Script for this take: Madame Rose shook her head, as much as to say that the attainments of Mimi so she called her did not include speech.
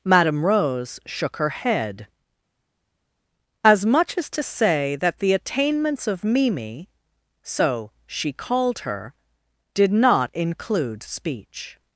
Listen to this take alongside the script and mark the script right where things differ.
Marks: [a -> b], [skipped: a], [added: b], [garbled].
Madame Rose shook her head, as much as to say that the attainments of Mimi so she called her did not include speech.